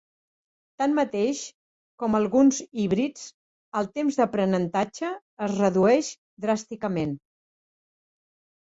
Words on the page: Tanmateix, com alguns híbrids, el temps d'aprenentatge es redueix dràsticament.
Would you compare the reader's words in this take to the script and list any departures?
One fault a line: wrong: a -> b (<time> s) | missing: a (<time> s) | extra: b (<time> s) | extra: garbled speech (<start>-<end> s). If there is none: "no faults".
no faults